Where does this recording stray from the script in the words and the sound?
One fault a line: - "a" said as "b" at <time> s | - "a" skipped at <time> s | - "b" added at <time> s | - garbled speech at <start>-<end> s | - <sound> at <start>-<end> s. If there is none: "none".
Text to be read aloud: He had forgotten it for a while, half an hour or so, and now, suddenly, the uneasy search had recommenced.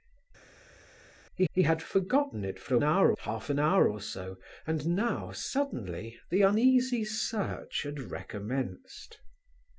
- "he" added at 1.5 s
- "while" said as "hour" at 2.8 s